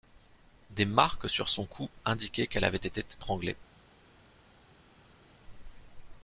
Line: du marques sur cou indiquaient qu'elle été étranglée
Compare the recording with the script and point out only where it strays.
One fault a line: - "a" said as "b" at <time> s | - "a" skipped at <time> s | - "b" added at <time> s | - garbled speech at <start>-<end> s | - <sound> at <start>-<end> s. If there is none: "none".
- "du" said as "des" at 0.7 s
- "son" added at 1.5 s
- "avait" added at 2.6 s